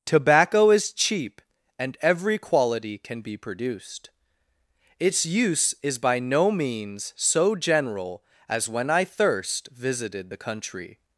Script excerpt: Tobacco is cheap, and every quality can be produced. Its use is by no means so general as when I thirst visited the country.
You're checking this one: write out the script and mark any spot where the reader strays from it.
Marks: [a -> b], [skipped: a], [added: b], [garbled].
Tobacco is cheap, and every quality can be produced. Its use is by no means so general as when I thirst visited the country.